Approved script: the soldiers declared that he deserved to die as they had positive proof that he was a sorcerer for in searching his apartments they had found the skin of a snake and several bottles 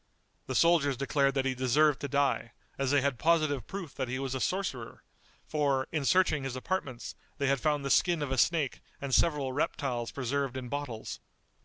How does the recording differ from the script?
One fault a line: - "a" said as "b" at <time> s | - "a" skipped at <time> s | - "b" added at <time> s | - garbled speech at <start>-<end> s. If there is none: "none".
- "reptiles preserved in" added at 9.5 s